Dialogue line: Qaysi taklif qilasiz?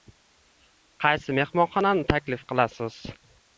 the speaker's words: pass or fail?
fail